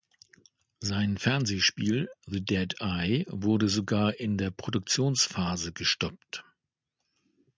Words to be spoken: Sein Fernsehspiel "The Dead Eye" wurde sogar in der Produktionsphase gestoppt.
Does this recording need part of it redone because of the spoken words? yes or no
no